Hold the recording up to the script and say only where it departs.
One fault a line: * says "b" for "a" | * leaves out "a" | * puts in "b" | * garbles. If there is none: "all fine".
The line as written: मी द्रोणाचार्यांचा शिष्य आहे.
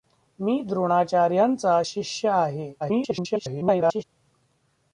* garbles